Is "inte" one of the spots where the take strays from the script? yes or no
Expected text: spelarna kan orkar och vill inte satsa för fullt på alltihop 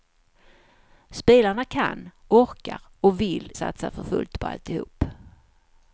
yes